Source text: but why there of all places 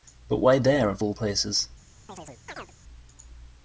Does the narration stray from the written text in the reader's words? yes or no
no